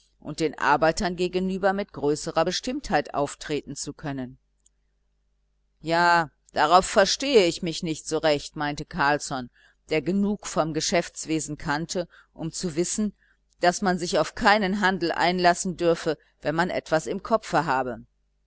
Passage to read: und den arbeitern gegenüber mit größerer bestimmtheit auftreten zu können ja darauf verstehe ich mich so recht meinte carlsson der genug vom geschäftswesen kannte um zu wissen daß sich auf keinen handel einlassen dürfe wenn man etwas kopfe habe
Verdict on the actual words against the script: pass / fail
fail